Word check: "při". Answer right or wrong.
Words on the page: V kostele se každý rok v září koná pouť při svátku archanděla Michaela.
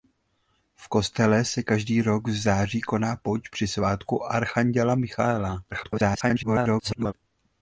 right